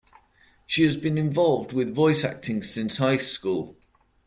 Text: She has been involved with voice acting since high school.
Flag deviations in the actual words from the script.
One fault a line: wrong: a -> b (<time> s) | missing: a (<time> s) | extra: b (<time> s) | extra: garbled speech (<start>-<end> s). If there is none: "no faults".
no faults